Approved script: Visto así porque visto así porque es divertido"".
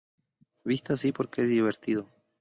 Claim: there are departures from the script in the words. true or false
true